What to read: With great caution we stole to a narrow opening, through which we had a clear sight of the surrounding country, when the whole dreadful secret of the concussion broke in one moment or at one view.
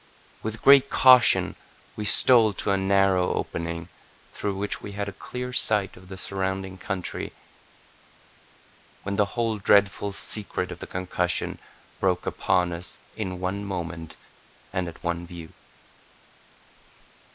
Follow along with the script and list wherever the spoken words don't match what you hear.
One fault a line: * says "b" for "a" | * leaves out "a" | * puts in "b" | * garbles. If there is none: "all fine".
* puts in "upon us"
* says "and" for "or"